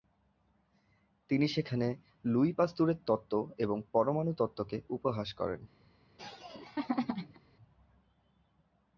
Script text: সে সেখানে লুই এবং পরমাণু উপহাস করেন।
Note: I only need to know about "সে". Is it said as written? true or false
false